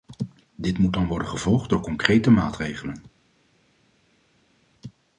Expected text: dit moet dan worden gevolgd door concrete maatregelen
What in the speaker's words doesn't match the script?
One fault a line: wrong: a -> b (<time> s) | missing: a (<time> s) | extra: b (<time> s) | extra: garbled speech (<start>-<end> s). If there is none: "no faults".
no faults